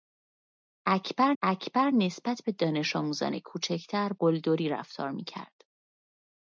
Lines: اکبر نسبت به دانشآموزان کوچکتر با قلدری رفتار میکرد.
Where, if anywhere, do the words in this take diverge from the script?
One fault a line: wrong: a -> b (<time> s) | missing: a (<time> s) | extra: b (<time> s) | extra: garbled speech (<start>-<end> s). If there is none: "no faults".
extra: اکبر (1.4 s)
missing: با (4.1 s)